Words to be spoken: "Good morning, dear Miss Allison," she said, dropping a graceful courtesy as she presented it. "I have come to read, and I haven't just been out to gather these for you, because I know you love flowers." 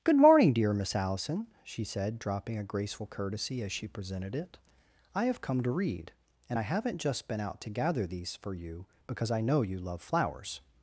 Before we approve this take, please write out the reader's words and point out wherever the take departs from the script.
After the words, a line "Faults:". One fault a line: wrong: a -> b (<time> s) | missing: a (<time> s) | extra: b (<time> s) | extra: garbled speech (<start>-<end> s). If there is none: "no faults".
"Good morning, dear Miss Allison," she said, dropping a graceful courtesy as she presented it. "I have come to read, and I haven't just been out to gather these for you, because I know you love flowers."
Faults:
no faults